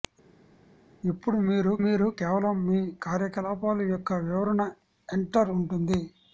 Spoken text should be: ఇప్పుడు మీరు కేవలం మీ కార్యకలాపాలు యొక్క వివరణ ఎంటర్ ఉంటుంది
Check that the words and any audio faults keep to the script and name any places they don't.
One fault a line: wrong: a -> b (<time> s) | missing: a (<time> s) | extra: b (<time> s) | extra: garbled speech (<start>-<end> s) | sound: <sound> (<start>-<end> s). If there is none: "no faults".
extra: మీరు (1.8 s)